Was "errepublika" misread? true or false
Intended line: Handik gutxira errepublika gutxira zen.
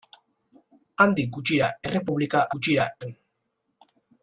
false